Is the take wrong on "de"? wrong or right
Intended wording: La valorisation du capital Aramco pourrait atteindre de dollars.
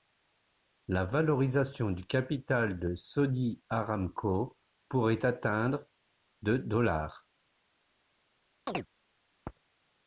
right